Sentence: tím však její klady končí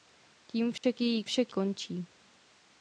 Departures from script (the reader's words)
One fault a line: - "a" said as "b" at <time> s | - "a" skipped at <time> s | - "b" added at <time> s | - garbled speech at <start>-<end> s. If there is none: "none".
- "klady" said as "však" at 1.2 s